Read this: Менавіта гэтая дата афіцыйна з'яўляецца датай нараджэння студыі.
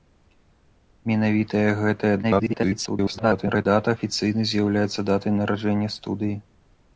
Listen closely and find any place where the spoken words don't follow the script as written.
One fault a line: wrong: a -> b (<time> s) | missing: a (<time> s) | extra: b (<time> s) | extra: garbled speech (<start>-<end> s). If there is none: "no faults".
extra: garbled speech (2.2-3.7 s)